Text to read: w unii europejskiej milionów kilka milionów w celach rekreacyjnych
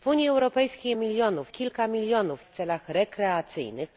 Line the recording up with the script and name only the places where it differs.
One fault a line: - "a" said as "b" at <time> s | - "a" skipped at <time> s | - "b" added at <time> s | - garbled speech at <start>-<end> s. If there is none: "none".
none